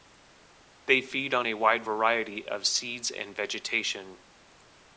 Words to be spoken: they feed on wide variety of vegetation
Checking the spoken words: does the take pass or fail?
fail